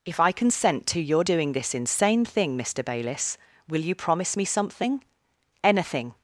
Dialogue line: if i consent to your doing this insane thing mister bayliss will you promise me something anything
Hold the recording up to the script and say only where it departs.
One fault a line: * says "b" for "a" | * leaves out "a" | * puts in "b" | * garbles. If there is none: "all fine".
all fine